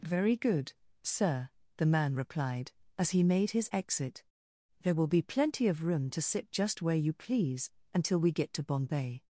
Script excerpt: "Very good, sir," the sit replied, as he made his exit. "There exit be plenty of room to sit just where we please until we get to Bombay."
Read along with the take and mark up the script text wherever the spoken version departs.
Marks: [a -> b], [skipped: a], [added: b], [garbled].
"Very good, sir," the [sit -> man] replied, as he made his exit. "There [exit -> will] be plenty of room to sit just where [we -> you] please until we get to Bombay."